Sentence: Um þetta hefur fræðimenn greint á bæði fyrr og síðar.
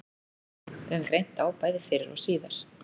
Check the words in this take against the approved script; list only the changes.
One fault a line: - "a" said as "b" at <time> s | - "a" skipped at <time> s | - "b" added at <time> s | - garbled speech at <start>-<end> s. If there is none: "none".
- "þetta hefur fræðimenn" skipped at 1.0 s